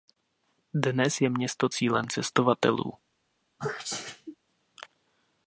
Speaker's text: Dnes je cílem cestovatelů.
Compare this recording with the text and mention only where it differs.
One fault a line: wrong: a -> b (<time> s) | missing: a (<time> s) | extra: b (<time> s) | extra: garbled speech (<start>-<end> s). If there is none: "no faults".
extra: město (1.3 s)